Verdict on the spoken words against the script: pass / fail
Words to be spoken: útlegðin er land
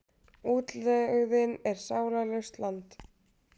fail